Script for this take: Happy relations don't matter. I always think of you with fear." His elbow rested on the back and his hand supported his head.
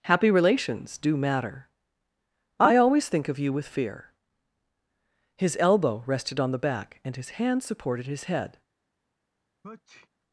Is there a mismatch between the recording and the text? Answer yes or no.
yes